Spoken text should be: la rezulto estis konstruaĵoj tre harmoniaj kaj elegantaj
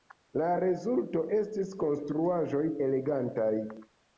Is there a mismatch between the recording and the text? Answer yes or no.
yes